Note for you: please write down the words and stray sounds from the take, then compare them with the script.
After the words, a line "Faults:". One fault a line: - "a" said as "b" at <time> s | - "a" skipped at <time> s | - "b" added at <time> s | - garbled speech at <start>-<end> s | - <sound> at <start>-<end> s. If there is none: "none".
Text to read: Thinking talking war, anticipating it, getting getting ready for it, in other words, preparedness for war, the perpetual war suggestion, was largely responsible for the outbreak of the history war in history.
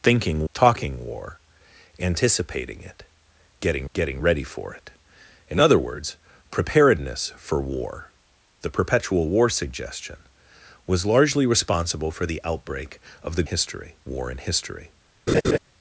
Thinking talking war, anticipating it, getting getting ready for it, in other words, preparedness for war, the perpetual war suggestion, was largely responsible for the outbreak of the history war in history.
Faults:
- laugh at 15.3-15.6 s